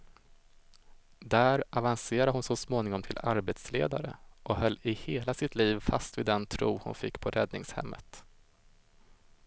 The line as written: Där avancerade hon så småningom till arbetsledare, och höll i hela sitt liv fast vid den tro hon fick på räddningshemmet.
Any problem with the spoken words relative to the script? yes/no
no